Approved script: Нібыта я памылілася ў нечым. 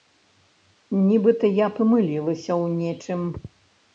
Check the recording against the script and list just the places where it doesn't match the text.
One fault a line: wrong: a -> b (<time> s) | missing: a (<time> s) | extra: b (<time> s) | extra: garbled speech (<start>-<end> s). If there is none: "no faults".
no faults